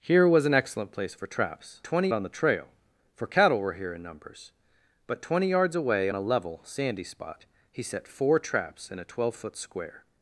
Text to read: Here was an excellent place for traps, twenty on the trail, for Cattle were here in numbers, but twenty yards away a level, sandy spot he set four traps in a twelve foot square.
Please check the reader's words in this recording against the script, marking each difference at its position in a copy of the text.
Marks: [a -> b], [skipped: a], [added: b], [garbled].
Here was an excellent place for traps, twenty on the trail, for Cattle were here in numbers, but twenty yards away a level, sandy spot he set four traps in a twelve foot square.